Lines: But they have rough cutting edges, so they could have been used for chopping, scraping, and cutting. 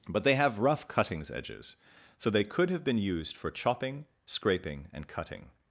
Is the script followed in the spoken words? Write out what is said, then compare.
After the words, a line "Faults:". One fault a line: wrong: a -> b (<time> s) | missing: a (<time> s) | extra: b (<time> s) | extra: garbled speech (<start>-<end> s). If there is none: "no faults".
But they have rough cuttings edges, so they could have been used for chopping, scraping, and cutting.
Faults:
wrong: cutting -> cuttings (0.9 s)